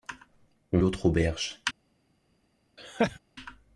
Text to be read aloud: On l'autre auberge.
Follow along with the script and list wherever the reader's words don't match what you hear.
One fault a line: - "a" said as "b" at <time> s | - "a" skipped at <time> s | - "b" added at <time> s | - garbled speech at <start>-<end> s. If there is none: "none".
none